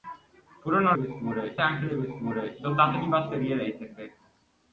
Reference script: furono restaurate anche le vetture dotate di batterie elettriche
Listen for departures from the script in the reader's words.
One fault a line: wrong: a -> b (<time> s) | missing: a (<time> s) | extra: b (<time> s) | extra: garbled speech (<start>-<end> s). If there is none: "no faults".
wrong: restaurate -> vetture (1.0 s)